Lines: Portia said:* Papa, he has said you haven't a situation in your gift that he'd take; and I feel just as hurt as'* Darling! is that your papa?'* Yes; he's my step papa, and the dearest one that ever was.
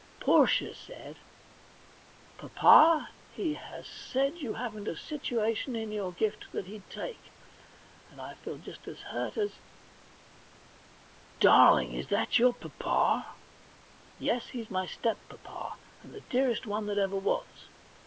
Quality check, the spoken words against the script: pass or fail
pass